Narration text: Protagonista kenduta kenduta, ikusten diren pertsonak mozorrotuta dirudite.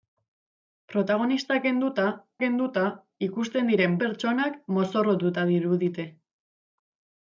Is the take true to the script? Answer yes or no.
yes